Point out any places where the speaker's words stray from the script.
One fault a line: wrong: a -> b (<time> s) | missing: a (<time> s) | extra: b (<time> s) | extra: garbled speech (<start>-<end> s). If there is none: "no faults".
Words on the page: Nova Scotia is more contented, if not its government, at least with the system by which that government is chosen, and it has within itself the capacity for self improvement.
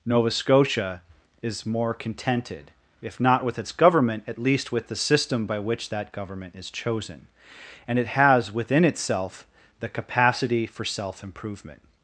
extra: with (3.4 s)